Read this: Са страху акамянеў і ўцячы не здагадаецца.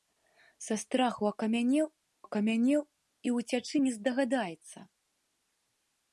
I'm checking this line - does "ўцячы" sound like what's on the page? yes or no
yes